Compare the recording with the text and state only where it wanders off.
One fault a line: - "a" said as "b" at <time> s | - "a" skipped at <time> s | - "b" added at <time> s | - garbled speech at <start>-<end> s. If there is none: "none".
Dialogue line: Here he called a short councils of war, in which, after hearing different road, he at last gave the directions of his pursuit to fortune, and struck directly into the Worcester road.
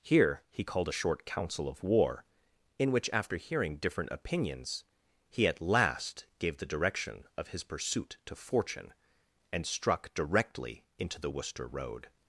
- "councils" said as "council" at 1.2 s
- "road" said as "opinions" at 4.1 s
- "directions" said as "direction" at 6.7 s